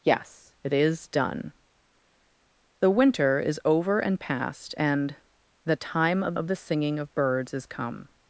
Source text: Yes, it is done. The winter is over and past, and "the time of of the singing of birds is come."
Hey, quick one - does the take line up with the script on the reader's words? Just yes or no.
yes